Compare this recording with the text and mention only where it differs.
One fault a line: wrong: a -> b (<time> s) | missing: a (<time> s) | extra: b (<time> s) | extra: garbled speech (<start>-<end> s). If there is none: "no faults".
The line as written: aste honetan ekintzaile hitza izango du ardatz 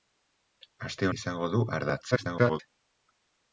missing: honetan ekintzaile hitza (1.1 s)
extra: garbled speech (2.1-2.6 s)